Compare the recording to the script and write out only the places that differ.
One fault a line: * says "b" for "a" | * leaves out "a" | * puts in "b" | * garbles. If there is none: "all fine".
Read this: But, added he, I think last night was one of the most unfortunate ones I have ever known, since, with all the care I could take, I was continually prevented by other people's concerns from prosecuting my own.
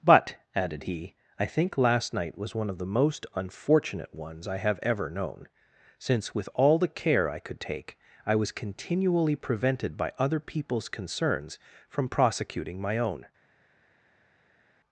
all fine